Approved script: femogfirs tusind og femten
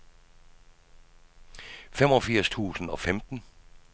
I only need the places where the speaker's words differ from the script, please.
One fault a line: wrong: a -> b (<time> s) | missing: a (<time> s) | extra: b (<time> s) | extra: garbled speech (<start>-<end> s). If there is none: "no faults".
no faults